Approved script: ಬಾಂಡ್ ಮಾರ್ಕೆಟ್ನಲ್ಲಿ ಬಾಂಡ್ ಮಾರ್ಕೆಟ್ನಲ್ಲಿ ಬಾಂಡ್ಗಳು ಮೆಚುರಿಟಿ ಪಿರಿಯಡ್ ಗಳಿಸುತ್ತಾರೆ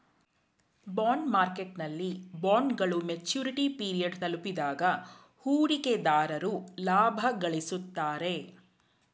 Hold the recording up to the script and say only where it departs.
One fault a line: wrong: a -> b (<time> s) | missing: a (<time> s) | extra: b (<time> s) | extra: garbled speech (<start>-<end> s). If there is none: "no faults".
missing: ಬಾಂಡ್ ಮಾರ್ಕೆಟ್ನಲ್ಲಿ (2.1 s)
extra: ತಲುಪಿದಾಗ ಹೂಡಿಕೆದಾರರು ಲಾಭ (4.2 s)